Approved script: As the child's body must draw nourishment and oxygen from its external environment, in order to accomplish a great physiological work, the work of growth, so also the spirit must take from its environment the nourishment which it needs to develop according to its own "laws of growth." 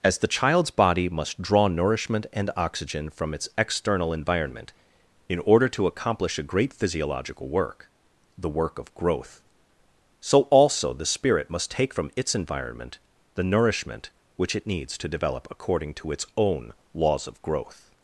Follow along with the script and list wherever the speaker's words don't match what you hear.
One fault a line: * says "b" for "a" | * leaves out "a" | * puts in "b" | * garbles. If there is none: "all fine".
all fine